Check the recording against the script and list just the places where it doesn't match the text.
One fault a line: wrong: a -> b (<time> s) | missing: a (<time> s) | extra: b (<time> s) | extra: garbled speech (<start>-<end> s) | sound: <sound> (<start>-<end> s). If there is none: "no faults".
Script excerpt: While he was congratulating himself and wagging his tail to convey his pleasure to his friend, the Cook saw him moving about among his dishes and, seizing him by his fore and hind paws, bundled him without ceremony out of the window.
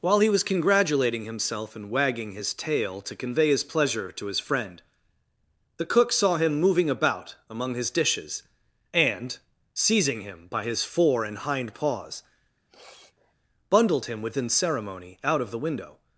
sound: sniff (12.6-13.3 s)
wrong: without -> within (14.2 s)